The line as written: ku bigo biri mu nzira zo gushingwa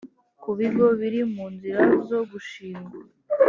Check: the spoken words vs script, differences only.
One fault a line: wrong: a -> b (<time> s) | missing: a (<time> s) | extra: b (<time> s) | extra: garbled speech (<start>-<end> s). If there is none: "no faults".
no faults